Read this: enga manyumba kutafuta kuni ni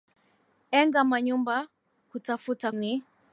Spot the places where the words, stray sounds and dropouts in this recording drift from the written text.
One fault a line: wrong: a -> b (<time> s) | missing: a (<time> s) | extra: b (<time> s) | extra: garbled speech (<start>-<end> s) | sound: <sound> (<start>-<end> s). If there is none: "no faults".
missing: kuni (2.7 s)